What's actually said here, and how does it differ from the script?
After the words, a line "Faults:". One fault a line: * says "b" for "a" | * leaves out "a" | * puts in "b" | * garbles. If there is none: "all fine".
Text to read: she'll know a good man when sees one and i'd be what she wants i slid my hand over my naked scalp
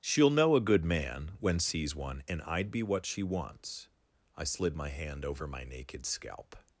she'll know a good man when sees one and i'd be what she wants i slid my hand over my naked scalp
Faults:
all fine